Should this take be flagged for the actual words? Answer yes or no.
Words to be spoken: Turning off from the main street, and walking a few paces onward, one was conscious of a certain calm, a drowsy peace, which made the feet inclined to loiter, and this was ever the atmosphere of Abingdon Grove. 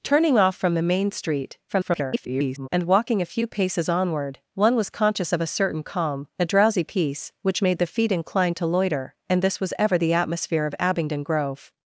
yes